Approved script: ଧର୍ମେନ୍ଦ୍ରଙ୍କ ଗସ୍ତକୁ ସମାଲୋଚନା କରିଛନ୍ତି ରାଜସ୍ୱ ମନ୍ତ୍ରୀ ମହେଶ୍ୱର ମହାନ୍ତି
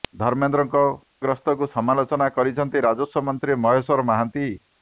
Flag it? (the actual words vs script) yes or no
no